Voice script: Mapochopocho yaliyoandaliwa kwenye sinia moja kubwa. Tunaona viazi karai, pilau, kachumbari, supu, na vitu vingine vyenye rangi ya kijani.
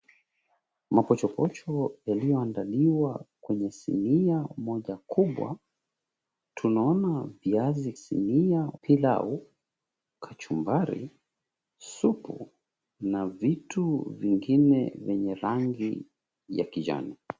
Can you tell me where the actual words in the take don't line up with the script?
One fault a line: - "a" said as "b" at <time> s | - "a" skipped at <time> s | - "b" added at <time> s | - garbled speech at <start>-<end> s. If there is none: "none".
- "karai" said as "sinia" at 7.9 s